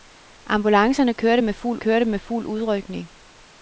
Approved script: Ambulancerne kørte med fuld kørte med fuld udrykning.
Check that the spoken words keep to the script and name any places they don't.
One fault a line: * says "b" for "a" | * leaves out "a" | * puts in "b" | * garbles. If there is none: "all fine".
all fine